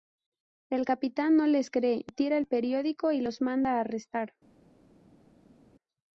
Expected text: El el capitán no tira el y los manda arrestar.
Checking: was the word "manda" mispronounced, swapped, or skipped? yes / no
no